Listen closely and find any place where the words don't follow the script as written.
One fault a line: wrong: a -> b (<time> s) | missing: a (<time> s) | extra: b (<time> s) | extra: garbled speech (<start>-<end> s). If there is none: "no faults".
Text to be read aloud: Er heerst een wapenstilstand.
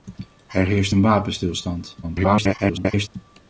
extra: garbled speech (2.0-3.1 s)